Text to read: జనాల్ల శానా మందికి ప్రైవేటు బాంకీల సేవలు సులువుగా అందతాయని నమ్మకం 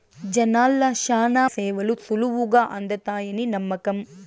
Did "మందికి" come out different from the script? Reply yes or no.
yes